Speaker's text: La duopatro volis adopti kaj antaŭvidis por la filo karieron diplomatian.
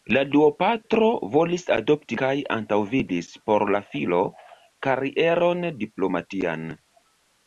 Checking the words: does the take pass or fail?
pass